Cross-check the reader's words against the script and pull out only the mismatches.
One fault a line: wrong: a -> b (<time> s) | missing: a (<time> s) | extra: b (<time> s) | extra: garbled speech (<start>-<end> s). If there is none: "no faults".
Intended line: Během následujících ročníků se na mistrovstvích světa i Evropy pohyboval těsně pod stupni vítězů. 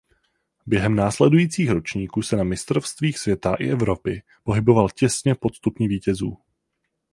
no faults